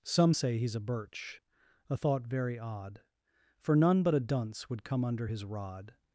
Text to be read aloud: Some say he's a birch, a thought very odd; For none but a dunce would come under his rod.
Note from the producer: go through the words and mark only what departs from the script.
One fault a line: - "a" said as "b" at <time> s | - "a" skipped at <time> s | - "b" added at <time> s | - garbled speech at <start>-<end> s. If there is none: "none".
none